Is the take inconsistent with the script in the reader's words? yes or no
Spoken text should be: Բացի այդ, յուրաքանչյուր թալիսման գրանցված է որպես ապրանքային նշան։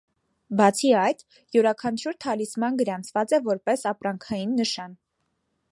no